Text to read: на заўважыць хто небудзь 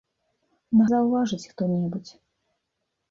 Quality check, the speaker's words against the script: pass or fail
pass